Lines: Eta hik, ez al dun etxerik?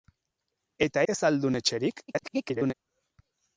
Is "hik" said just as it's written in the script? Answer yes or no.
no